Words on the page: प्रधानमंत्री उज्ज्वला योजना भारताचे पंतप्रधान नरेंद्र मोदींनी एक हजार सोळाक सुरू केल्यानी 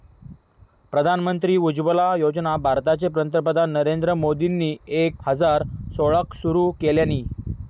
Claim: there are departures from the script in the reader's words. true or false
false